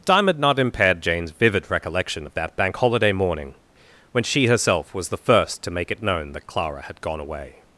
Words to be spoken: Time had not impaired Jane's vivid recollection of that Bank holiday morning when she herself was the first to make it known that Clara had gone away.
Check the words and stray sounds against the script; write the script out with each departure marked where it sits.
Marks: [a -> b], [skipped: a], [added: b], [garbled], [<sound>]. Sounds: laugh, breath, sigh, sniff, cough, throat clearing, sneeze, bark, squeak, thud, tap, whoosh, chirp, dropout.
Time had not impaired Jane's vivid recollection of that Bank holiday morning when she herself was the first to make it known that Clara had gone away.